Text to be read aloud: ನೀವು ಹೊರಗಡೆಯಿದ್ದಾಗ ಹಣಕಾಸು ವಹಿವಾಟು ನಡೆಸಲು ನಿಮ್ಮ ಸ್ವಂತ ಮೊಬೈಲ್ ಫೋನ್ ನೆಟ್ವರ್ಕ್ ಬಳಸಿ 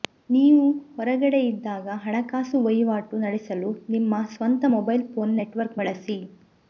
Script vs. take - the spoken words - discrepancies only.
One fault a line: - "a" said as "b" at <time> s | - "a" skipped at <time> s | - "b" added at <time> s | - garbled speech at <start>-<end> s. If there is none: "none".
none